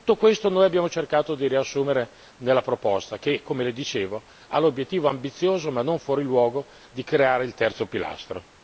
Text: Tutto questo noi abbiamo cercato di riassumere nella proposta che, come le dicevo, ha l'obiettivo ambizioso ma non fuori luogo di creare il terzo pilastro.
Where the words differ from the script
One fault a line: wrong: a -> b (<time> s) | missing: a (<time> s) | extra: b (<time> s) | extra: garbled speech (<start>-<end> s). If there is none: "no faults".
no faults